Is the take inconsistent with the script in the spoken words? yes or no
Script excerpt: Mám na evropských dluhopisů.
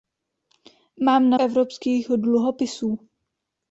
no